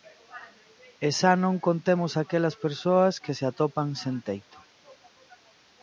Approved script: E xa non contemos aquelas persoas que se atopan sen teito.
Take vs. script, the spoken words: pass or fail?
pass